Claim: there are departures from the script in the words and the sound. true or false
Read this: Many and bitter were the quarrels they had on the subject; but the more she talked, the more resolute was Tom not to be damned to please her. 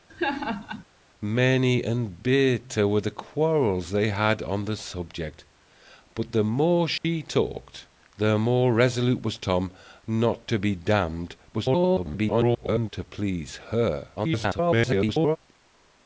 true